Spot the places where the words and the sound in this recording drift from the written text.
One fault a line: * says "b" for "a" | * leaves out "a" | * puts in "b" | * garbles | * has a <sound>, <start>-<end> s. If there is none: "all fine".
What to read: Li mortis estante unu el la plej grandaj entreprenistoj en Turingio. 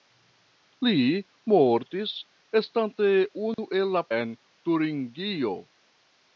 * has a dropout, 3.5-3.6 s
* leaves out "plej grandaj entreprenistoj"